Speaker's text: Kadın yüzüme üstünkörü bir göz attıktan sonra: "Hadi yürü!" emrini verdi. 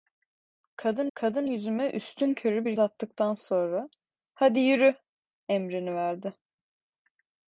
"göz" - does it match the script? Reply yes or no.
no